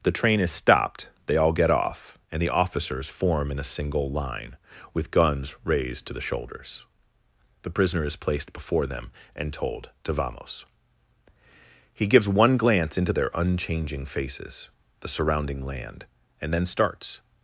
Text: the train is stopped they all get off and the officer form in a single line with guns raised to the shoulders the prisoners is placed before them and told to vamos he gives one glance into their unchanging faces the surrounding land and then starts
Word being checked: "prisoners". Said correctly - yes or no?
no